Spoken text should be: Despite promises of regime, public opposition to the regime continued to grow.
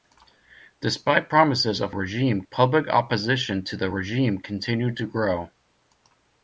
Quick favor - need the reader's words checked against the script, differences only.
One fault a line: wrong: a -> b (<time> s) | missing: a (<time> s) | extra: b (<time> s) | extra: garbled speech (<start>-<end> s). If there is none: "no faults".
no faults